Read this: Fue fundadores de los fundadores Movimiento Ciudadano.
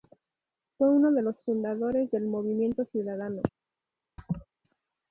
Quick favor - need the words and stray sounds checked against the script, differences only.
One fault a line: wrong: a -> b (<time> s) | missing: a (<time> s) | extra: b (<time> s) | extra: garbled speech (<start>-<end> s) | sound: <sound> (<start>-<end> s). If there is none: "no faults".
wrong: fundadores -> uno (0.9 s)
extra: del (2.1 s)
sound: laugh (4.2-4.5 s)